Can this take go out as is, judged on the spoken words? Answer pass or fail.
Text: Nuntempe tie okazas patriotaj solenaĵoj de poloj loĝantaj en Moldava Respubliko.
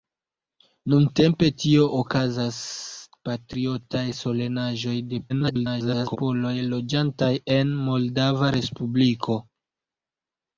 fail